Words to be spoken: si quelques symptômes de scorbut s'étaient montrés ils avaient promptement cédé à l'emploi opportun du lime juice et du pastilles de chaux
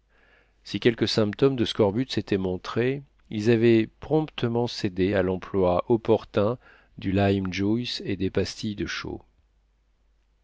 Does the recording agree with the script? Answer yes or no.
no